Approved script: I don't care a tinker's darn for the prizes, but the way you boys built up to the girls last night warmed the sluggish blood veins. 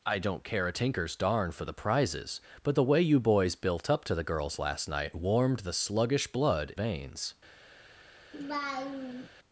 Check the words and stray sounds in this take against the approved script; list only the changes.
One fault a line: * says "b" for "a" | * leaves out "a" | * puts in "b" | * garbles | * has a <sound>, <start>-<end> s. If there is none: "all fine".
* has a laugh, 8.3-9.3 s